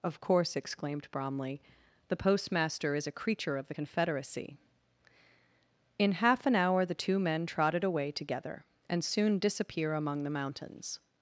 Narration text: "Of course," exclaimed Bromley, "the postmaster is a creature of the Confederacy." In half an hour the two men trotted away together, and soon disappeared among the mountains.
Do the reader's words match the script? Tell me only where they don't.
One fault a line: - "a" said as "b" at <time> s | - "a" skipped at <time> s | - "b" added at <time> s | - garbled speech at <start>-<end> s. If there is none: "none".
- "disappeared" said as "disappear" at 9.4 s